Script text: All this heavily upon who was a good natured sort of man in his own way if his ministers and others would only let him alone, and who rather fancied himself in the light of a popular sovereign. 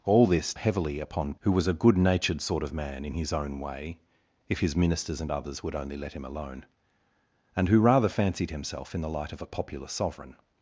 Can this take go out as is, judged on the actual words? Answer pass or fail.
pass